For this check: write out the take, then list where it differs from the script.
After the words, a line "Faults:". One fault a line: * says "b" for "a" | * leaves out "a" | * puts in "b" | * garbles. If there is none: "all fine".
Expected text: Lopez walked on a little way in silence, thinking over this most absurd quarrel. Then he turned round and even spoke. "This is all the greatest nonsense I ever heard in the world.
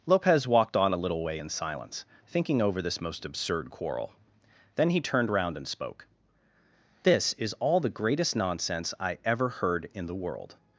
Lopez walked on a little way in silence, thinking over this most absurd quarrel. Then he turned round and spoke. "This is all the greatest nonsense I ever heard in the world.
Faults:
* leaves out "even"